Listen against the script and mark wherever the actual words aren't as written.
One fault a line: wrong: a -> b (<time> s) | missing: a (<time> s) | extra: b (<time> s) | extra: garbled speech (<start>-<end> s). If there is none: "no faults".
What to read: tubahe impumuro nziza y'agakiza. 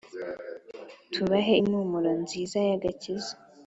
no faults